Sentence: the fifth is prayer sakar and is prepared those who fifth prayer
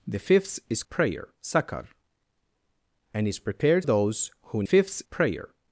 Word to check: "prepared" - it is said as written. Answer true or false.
true